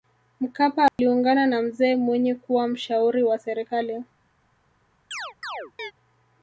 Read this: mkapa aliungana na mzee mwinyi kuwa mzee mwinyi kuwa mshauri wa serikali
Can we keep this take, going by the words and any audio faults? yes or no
no